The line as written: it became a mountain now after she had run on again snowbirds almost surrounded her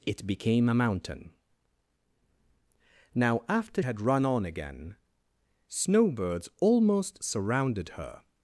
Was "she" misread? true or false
true